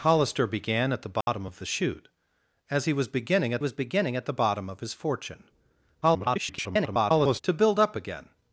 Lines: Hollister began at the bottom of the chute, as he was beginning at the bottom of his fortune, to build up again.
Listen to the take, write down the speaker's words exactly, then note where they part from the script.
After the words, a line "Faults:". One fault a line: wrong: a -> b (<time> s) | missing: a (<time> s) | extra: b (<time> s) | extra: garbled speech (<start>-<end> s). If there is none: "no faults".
Hollister began at the bottom of the chute, as he was beginning at was beginning at the bottom of his fortune, [garbled] to build up again.
Faults:
extra: was beginning at (3.6 s)
extra: garbled speech (6.0-7.4 s)